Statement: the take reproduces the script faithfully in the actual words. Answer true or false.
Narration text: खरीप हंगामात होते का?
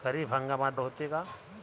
true